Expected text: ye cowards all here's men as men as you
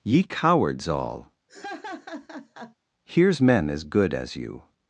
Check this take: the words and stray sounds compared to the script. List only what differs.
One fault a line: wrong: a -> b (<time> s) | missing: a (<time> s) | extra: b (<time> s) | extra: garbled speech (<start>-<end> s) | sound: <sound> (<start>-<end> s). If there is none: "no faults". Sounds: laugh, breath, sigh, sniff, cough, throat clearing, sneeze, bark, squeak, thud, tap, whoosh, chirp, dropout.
sound: laugh (1.5-2.8 s)
wrong: men -> good (3.8 s)